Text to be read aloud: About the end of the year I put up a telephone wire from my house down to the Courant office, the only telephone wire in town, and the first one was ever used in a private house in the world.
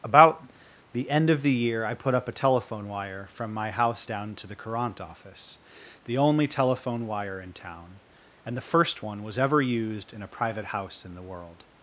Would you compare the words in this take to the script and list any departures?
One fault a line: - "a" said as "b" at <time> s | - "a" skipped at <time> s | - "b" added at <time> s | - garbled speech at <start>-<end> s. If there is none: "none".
none